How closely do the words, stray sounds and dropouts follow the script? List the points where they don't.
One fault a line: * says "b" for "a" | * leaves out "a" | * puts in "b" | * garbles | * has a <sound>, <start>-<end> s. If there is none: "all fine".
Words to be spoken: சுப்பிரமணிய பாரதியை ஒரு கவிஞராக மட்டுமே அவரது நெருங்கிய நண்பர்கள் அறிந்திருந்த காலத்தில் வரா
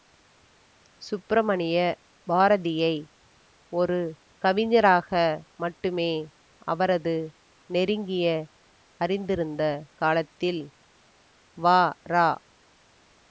* leaves out "நண்பர்கள்"